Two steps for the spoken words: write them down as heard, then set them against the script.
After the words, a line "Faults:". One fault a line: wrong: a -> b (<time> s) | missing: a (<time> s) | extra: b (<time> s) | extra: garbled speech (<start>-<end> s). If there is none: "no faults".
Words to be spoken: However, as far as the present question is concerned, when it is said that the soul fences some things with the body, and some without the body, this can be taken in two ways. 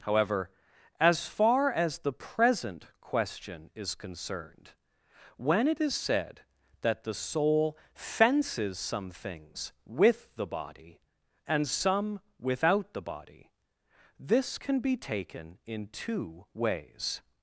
However, as far as the present question is concerned, when it is said that the soul fences some things with the body, and some without the body, this can be taken in two ways.
Faults:
no faults